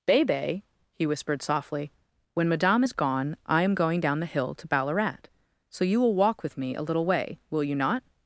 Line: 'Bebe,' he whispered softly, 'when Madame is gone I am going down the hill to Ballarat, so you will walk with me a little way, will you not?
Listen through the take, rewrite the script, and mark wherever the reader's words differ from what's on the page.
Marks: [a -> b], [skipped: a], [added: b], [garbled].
'Bebe,' he whispered softly, 'when Madame is gone I am going down the hill to Ballarat, so you will walk with me a little way, will you not?